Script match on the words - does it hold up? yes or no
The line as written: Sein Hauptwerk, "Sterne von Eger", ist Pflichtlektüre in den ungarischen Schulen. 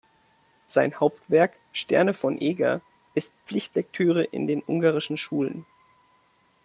yes